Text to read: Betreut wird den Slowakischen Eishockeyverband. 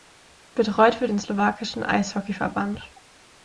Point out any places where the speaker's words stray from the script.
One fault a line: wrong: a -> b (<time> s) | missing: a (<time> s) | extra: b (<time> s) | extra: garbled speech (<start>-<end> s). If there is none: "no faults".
no faults